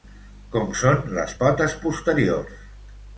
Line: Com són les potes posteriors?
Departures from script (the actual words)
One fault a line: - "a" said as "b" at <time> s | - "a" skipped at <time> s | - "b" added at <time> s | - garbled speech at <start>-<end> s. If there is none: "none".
none